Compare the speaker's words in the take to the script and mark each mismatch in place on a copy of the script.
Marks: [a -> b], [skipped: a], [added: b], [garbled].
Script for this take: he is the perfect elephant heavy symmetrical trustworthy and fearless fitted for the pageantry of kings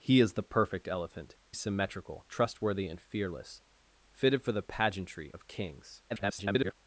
he is the perfect elephant [skipped: heavy] symmetrical trustworthy and fearless fitted for the pageantry of kings [garbled]